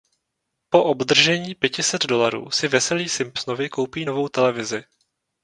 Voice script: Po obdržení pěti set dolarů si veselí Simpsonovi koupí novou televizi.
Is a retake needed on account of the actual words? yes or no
no